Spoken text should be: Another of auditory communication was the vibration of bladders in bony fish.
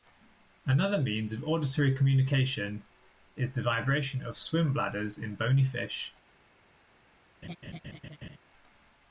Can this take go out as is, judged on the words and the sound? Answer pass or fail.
fail